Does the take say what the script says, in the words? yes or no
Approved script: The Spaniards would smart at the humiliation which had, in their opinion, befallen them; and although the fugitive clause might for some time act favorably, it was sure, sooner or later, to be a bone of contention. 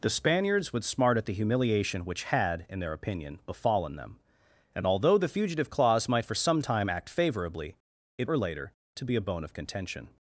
no